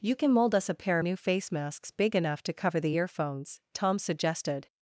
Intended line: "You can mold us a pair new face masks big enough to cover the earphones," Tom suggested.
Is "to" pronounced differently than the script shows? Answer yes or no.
no